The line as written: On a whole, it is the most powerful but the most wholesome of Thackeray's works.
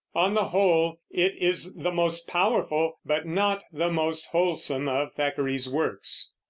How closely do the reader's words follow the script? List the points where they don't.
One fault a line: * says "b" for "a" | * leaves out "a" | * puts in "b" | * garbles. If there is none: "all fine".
* says "the" for "a"
* puts in "not"